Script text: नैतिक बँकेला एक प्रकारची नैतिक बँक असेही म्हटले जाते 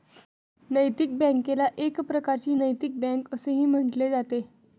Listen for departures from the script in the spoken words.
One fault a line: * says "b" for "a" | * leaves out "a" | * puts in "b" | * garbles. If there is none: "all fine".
all fine